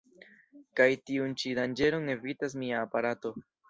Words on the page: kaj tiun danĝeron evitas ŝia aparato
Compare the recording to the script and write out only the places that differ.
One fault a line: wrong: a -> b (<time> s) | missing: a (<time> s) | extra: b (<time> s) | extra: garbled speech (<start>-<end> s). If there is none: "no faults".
extra: ĉi (1.4 s)
wrong: ŝia -> mia (2.6 s)